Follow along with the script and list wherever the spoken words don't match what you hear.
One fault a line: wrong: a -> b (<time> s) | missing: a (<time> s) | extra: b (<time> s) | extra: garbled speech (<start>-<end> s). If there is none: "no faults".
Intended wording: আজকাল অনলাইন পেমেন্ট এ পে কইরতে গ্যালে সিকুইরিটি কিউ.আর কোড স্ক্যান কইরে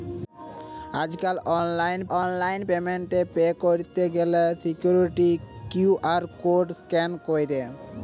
extra: অনলাইন (2.1 s)